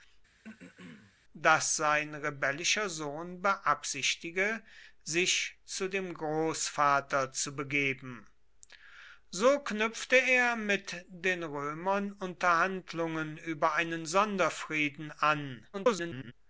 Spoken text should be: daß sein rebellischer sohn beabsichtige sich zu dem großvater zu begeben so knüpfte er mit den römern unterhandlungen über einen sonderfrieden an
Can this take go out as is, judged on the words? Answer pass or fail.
fail